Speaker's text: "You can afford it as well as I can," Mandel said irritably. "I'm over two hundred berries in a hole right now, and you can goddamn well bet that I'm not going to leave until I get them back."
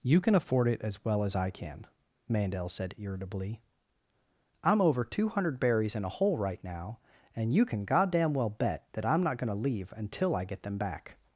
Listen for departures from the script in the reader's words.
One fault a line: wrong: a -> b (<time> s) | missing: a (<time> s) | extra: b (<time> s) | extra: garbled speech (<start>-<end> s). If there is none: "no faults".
no faults